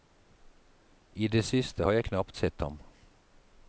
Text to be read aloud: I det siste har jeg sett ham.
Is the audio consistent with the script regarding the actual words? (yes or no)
no